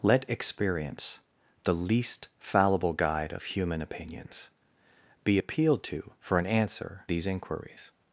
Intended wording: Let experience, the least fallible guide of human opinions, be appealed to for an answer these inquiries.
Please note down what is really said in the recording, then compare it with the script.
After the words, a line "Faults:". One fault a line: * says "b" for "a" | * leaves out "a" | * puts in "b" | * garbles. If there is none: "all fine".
Let experience, the least fallible guide of human opinions, be appealed to for an answer these inquiries.
Faults:
all fine